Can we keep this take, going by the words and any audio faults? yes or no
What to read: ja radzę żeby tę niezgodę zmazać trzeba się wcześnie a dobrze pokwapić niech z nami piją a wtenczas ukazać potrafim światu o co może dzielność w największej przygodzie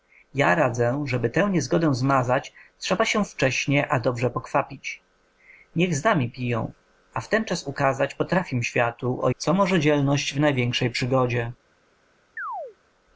no